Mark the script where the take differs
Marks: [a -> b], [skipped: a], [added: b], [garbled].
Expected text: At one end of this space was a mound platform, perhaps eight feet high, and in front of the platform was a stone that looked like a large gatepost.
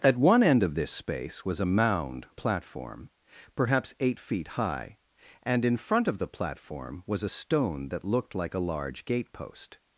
At one end of this space was a mound platform, perhaps eight feet high, and in front of the platform was a stone that looked like a large gatepost.